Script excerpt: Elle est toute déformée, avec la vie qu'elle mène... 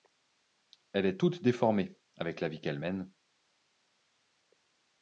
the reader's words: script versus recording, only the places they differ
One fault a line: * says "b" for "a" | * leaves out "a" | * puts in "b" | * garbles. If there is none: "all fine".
all fine